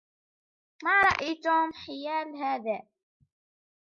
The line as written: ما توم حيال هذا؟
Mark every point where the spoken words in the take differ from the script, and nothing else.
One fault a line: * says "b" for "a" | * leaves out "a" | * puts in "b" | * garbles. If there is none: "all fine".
* puts in "رأي"